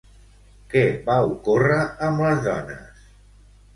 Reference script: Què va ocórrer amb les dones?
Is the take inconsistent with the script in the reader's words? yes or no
no